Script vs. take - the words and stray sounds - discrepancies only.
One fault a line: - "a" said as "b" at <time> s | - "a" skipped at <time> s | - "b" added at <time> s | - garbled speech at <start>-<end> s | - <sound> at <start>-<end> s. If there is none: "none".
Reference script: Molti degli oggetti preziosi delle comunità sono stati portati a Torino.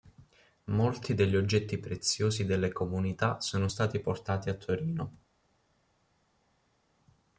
none